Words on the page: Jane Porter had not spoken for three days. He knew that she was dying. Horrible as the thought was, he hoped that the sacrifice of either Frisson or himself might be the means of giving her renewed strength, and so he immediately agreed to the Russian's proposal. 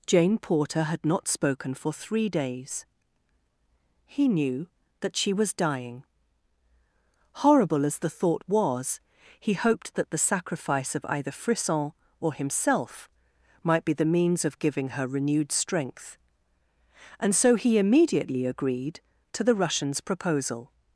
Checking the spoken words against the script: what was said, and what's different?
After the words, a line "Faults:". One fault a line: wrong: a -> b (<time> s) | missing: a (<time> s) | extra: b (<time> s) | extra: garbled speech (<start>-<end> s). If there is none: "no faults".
Jane Porter had not spoken for three days. He knew that she was dying. Horrible as the thought was, he hoped that the sacrifice of either Frisson or himself might be the means of giving her renewed strength, and so he immediately agreed to the Russian's proposal.
Faults:
no faults